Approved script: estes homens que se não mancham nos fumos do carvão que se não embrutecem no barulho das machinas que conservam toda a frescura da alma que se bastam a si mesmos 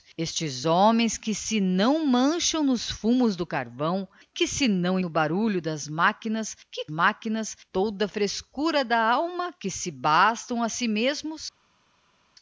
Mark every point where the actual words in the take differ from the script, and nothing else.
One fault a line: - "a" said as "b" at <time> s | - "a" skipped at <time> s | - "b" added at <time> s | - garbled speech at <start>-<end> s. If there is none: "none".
- "embrutecem" skipped at 5.0 s
- "conservam" said as "machinas" at 6.9 s